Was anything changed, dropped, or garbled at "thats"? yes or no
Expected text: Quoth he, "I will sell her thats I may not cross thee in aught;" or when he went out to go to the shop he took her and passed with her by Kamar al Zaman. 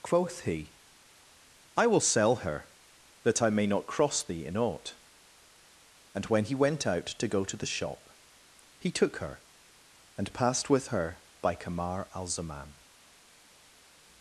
yes